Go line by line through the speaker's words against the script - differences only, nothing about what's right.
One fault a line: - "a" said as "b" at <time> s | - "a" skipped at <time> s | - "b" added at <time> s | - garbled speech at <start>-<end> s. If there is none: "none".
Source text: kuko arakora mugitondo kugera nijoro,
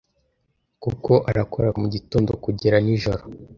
none